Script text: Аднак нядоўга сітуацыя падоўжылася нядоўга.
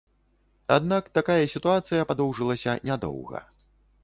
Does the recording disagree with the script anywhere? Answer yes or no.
yes